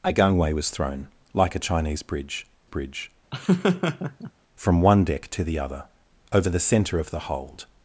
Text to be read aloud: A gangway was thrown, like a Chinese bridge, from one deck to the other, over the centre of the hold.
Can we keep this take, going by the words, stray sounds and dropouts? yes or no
no